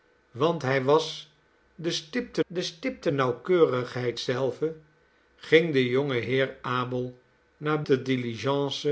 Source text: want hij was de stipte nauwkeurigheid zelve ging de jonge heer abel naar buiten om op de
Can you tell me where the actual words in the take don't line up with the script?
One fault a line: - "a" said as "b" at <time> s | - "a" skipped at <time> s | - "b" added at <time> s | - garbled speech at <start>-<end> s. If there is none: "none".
- "de stipte" added at 2.5 s
- "buiten om op" skipped at 7.8 s